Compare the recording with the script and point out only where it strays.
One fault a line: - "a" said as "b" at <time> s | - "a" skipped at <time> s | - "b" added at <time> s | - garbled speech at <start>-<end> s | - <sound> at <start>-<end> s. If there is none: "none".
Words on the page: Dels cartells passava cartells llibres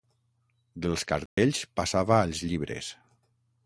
- dropout at 1.3-1.4 s
- "cartells" said as "als" at 2.2 s